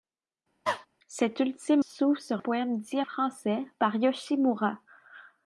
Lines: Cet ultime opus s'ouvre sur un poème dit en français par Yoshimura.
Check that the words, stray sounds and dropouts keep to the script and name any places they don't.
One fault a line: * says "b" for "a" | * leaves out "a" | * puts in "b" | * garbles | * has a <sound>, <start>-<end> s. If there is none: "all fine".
* has a cough, 0.7-0.9 s
* leaves out "opus"
* leaves out "un"
* leaves out "en"